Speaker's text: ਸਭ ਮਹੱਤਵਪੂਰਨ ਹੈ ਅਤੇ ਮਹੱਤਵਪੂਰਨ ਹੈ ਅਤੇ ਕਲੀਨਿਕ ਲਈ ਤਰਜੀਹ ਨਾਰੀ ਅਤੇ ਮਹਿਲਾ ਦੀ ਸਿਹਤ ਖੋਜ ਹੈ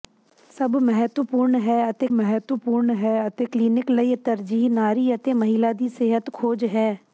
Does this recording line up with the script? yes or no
yes